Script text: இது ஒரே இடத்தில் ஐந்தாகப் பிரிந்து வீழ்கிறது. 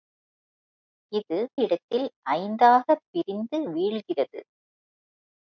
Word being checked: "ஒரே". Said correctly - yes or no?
no